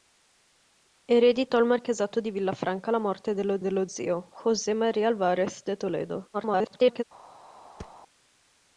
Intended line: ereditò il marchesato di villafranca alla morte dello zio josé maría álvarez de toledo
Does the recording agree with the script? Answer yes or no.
no